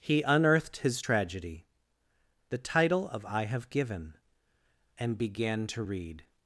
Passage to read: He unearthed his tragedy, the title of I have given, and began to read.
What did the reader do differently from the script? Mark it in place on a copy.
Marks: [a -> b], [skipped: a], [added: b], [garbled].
He unearthed his tragedy, the title of I have given, and began to read.